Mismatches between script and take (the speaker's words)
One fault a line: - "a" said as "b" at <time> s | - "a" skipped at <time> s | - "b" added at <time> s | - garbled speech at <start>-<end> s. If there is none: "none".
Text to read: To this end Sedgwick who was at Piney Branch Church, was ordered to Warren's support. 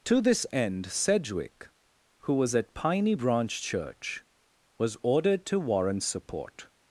none